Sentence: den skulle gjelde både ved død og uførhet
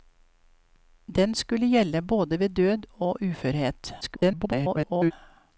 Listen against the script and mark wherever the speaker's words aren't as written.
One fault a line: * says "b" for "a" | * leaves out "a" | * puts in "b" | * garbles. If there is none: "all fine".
* garbles